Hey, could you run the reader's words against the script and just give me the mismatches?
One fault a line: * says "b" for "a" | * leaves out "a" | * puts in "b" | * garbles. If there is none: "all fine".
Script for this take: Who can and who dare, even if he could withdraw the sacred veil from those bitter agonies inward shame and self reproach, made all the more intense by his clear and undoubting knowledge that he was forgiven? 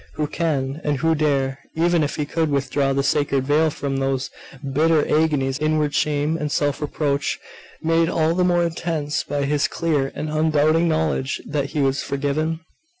all fine